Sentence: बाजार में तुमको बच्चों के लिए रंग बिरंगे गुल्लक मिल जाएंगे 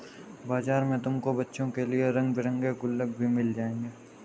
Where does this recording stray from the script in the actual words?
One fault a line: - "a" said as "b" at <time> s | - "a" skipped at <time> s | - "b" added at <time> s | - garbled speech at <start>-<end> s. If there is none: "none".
- "भी" added at 3.2 s